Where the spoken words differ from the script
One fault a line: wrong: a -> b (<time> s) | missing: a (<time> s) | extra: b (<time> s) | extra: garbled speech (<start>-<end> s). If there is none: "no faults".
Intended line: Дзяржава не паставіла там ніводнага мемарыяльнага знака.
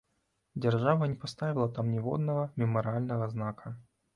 no faults